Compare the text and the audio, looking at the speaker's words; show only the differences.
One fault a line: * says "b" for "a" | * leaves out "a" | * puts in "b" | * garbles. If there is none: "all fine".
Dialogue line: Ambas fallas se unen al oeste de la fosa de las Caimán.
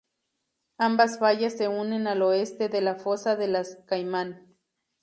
all fine